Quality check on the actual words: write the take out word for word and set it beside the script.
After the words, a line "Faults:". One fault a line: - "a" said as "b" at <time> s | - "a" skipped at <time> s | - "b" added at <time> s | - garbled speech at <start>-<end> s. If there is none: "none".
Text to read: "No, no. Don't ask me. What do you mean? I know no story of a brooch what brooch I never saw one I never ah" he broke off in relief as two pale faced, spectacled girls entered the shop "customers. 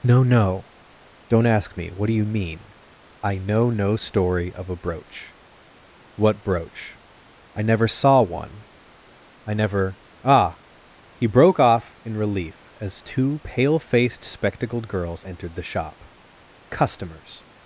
"No, no. Don't ask me. What do you mean? I know no story of a brooch what brooch I never saw one I never ah" he broke off in relief as two pale faced, spectacled girls entered the shop "customers.
Faults:
none